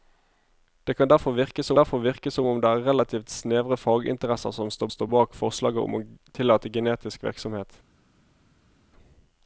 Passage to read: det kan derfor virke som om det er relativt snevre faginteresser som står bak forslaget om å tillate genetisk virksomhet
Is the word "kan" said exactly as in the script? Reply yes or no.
yes